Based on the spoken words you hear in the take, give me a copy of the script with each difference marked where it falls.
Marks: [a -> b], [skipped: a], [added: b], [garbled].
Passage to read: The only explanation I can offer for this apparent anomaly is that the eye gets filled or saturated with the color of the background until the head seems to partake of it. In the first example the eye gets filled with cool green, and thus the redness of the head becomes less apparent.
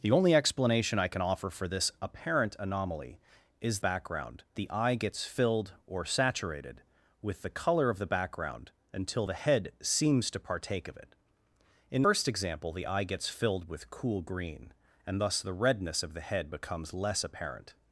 The only explanation I can offer for this apparent anomaly is [that -> background] the eye gets filled or saturated with the color of the background until the head seems to partake of it. In [skipped: the] first example the eye gets filled with cool green, and thus the redness of the head becomes less apparent.